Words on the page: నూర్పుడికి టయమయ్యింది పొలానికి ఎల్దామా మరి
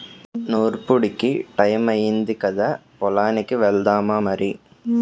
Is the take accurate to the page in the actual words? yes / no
no